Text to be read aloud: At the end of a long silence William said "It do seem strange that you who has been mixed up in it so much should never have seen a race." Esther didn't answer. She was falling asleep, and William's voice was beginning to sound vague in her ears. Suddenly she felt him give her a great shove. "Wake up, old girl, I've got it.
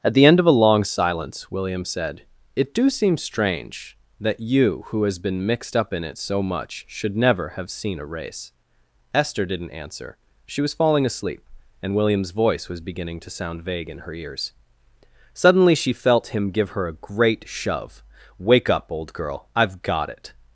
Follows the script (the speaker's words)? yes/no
yes